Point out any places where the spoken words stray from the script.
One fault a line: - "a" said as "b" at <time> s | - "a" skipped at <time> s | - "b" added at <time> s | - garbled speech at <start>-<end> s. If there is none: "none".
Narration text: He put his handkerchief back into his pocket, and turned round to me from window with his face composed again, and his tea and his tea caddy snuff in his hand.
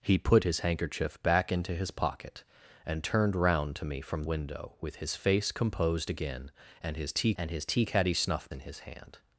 none